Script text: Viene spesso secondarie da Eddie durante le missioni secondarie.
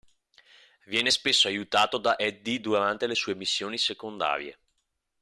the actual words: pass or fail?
fail